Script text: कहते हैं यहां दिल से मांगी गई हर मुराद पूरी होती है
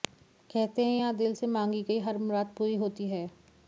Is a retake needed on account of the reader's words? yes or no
no